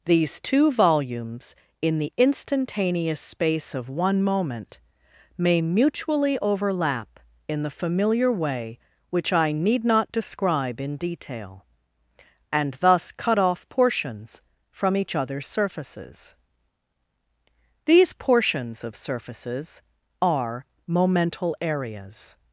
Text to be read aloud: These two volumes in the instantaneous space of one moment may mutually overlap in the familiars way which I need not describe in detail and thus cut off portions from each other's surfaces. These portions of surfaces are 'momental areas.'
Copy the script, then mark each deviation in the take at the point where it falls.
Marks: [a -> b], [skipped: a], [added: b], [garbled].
These two volumes in the instantaneous space of one moment may mutually overlap in the [familiars -> familiar] way which I need not describe in detail and thus cut off portions from each other's surfaces. These portions of surfaces are 'momental areas.'